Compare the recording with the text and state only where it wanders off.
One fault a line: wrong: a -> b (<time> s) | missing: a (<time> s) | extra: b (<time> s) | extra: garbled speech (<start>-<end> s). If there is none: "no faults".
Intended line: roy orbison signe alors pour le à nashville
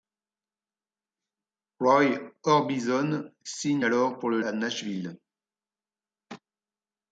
no faults